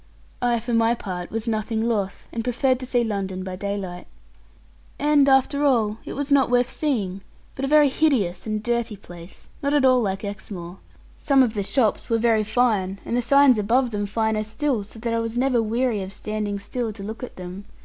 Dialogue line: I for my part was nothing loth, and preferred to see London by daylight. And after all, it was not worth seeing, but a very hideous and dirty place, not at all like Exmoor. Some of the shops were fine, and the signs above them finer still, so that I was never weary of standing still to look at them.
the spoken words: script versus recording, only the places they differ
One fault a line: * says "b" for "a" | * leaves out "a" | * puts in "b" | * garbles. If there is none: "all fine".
* puts in "very"